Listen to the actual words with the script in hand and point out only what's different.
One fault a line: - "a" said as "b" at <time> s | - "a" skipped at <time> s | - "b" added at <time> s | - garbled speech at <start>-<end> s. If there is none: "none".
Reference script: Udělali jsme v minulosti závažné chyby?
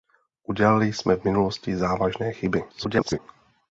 - garbled speech at 2.7-3.2 s